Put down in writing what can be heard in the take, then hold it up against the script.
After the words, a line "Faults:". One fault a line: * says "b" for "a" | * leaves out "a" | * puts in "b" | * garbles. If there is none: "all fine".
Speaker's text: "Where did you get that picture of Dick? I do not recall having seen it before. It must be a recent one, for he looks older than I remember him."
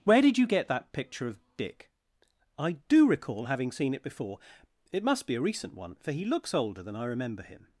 "Where did you get that picture of Dick? I do recall having seen it before. It must be a recent one, for he looks older than I remember him."
Faults:
* leaves out "not"